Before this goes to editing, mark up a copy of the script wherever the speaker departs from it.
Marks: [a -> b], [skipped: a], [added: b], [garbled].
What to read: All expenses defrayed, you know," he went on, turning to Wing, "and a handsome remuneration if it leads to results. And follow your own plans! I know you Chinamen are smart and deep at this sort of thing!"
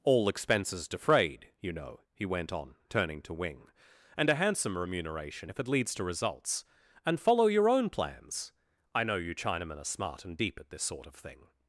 All expenses defrayed, you know," he went on, turning to Wing, "and a handsome remuneration if it leads to results. And follow your own plans! I know you Chinamen are smart and deep at this sort of thing!"